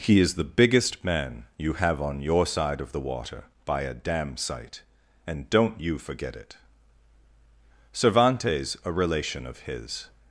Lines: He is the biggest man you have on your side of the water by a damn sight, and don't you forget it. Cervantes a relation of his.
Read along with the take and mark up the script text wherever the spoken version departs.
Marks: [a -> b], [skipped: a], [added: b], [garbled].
He is the biggest man you have on your side of the water by a damn sight, and don't you forget it. Cervantes a relation of his.